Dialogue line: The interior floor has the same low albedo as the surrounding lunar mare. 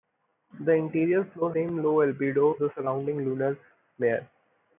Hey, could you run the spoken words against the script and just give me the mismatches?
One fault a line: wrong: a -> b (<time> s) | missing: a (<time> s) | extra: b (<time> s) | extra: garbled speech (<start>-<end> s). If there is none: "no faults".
missing: has the (1.5 s)
missing: as (2.6 s)